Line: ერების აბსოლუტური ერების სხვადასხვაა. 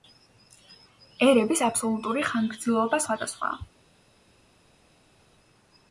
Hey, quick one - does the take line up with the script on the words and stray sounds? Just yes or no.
no